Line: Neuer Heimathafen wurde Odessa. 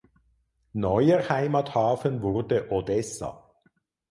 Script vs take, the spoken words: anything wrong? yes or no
no